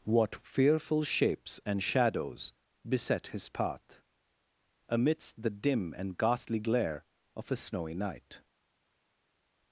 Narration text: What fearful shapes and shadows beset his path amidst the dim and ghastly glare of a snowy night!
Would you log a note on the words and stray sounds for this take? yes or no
no